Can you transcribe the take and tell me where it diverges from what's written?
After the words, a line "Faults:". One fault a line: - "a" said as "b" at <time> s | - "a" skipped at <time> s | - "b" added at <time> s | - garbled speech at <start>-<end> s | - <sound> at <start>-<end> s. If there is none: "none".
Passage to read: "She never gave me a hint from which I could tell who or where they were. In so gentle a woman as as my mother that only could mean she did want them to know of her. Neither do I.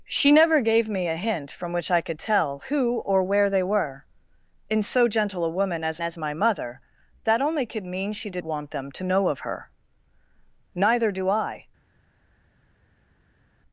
"She never gave me a hint from which I could tell who or where they were. In so gentle a woman as as my mother that only could mean she did want them to know of her. Neither do I.
Faults:
none